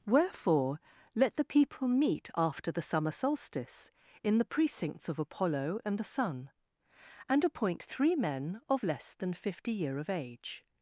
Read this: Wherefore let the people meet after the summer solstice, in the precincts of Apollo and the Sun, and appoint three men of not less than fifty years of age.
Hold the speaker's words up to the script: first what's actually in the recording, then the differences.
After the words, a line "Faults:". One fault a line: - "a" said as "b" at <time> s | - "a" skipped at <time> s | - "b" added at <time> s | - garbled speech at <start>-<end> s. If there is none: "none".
Wherefore let the people meet after the summer solstice, in the precincts of Apollo and the Sun, and appoint three men of less than fifty year of age.
Faults:
- "not" skipped at 8.8 s
- "years" said as "year" at 9.7 s